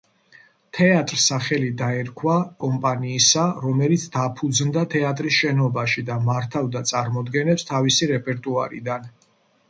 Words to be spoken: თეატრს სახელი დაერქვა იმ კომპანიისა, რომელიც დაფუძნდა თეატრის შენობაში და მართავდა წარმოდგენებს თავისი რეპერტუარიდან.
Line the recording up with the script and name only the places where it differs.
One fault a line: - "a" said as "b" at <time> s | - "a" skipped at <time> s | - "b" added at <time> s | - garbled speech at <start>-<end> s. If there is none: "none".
- "იმ" skipped at 2.4 s